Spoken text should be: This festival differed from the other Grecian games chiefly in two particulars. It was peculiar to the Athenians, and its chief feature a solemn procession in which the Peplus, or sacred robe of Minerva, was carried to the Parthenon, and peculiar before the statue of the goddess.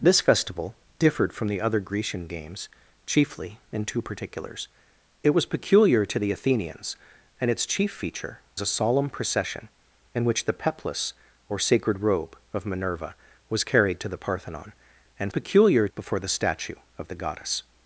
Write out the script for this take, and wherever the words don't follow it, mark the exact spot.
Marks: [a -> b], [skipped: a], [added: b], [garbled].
This festival differed from the other Grecian games chiefly in two particulars. It was peculiar to the Athenians, and its chief feature a solemn procession in which the Peplus, or sacred robe of Minerva, was carried to the Parthenon, and peculiar before the statue of the goddess.